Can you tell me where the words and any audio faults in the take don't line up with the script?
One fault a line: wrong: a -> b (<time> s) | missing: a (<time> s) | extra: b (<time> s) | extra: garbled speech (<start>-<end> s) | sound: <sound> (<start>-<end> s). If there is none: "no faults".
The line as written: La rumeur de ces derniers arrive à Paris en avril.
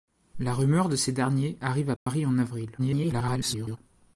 sound: dropout (2.0-2.1 s)
extra: garbled speech (2.8-3.8 s)